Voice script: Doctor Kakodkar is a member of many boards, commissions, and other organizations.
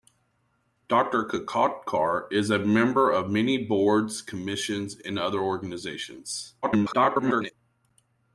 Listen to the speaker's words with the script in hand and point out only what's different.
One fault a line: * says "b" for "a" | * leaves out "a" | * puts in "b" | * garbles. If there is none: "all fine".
* garbles